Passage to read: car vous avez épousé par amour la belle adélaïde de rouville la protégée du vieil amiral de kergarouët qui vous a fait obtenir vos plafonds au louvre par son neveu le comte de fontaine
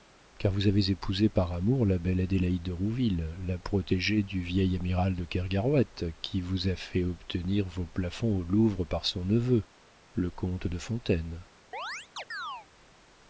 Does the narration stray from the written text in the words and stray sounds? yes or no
yes